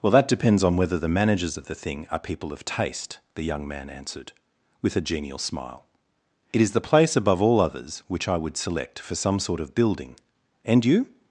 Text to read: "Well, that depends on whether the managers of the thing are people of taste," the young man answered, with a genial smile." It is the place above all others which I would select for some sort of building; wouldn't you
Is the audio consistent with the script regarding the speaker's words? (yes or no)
no